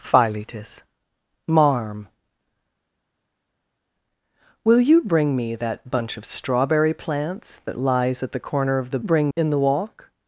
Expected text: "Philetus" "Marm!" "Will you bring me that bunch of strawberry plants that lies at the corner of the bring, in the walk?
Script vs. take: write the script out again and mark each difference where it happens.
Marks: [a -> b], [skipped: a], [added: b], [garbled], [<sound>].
"Philetus" "Marm!" "Will you bring me that bunch of strawberry plants that lies at the corner of the bring, in the walk?